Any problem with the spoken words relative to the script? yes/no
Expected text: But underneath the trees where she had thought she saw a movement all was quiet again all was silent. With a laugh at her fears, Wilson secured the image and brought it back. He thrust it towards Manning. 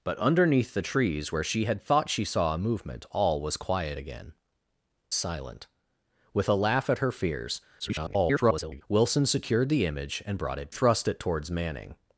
yes